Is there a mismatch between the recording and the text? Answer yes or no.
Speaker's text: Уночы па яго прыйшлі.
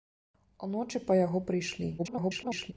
yes